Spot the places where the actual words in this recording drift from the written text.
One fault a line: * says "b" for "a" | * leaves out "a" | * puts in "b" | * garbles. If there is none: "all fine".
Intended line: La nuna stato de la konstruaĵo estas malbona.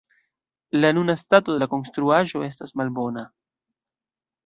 all fine